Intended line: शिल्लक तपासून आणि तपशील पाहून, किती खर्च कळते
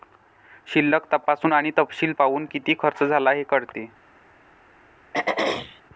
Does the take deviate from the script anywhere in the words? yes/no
yes